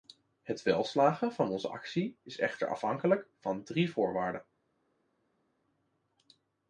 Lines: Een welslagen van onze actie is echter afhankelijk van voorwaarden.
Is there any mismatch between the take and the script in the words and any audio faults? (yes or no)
yes